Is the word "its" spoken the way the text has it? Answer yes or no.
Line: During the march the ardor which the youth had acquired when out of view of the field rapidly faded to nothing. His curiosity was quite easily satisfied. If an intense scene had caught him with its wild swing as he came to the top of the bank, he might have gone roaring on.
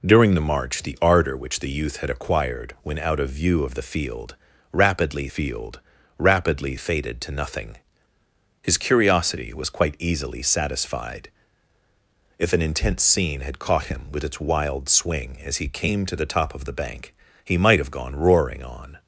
yes